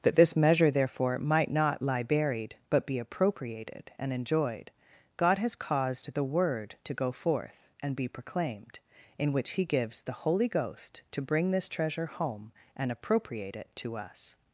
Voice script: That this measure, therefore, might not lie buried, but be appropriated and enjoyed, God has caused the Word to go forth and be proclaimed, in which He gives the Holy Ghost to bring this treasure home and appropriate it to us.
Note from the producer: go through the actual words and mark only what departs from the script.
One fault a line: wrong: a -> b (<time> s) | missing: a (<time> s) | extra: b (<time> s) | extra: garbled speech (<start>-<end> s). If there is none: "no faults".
no faults